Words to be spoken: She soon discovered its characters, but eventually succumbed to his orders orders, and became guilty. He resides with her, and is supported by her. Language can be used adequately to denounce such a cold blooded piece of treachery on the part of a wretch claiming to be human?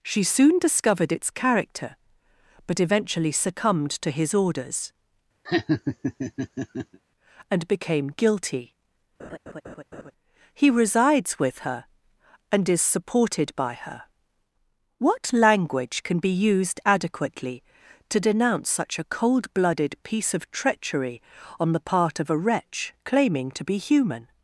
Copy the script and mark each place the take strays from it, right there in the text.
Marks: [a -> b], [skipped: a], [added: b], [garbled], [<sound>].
She soon discovered its [characters, -> character] but eventually succumbed to his orders [skipped: orders,] [laugh] and became guilty. [laugh] He resides with her, and is supported by her. [added: What] Language can be used adequately to denounce such a cold blooded piece of treachery on the part of a wretch claiming to be human?